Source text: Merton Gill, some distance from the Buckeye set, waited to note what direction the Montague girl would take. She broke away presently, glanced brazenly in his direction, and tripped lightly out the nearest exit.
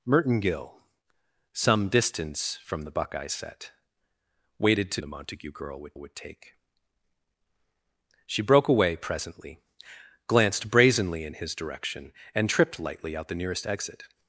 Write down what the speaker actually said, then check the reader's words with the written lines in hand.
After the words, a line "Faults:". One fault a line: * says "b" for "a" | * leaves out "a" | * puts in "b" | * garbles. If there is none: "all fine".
Merton Gill, some distance from the Buckeye set, waited to the Montague girl would would take. She broke away presently, glanced brazenly in his direction, and tripped lightly out the nearest exit.
Faults:
* leaves out "note what direction"
* puts in "would"